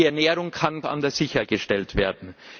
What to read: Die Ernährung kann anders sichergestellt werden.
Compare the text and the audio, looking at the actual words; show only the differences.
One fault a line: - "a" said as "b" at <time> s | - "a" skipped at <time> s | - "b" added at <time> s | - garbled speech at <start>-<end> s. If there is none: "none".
none